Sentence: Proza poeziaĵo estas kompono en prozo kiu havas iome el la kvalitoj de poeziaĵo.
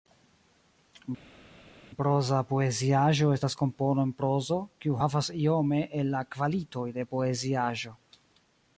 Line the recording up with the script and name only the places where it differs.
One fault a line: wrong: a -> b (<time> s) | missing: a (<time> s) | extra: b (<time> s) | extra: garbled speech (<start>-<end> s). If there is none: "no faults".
no faults